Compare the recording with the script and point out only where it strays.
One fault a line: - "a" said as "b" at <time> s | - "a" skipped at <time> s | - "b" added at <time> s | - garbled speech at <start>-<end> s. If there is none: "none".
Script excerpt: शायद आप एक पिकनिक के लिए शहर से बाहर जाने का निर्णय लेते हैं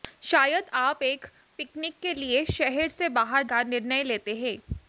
- "जाने" skipped at 3.4 s